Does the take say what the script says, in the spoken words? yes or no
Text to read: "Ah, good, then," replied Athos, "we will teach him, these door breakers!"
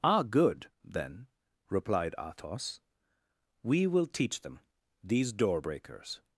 no